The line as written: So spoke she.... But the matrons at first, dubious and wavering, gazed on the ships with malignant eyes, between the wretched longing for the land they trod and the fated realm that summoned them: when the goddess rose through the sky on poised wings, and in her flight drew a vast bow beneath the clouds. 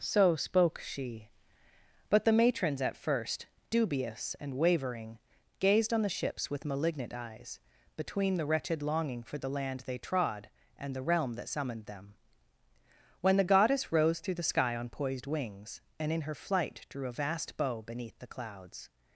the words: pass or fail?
fail